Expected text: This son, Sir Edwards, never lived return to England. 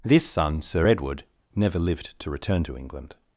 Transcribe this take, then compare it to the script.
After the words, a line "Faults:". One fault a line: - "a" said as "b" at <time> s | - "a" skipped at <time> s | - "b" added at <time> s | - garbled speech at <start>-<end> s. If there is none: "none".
This son, Sir Edward, never lived to return to England.
Faults:
- "Edwards" said as "Edward" at 0.9 s
- "to" added at 2.2 s